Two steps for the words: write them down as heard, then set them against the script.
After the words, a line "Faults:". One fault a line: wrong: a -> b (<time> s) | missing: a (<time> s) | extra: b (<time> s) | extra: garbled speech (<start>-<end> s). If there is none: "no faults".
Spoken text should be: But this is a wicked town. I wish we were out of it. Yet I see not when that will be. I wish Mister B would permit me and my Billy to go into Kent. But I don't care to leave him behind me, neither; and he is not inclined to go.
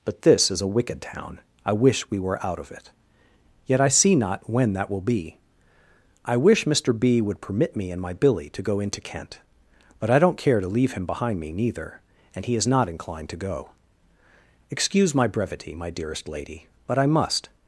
But this is a wicked town. I wish we were out of it. Yet I see not when that will be. I wish Mister B would permit me and my Billy to go into Kent. But I don't care to leave him behind me, neither; and he is not inclined to go. Excuse my brevity, my dearest lady But I must
Faults:
extra: Excuse my brevity my dearest lady But I must (14.7 s)